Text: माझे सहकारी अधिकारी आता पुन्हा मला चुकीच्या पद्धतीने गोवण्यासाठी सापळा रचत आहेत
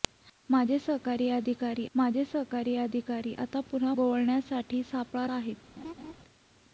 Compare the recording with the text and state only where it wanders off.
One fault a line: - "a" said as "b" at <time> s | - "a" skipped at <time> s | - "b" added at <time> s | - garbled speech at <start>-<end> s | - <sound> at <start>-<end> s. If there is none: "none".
- "आता पुन्हा मला चुकीच्या पद्धतीने" said as "माझे सहकारी अधिकारी आता पुन्हा" at 1.9 s
- "रचत" skipped at 5.3 s
- laugh at 5.8-6.1 s